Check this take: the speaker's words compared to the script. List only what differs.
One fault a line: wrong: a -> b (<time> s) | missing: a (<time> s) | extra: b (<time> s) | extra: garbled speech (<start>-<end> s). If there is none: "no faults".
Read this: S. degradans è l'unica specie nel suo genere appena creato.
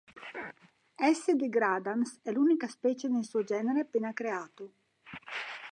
no faults